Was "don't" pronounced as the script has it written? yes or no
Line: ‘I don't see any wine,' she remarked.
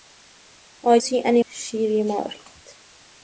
no